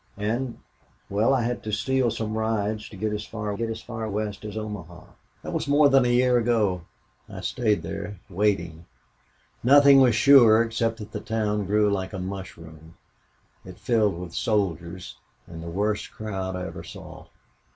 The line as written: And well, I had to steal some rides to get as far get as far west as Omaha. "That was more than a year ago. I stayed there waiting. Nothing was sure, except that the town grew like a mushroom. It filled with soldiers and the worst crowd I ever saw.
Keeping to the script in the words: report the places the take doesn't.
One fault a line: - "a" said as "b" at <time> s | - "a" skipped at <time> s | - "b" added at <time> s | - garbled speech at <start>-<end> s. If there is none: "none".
none